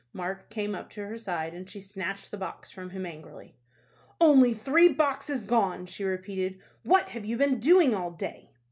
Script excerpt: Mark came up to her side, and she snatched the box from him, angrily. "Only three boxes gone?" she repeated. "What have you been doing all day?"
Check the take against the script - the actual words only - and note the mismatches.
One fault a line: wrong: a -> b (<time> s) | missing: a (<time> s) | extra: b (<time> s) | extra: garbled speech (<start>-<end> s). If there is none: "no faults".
no faults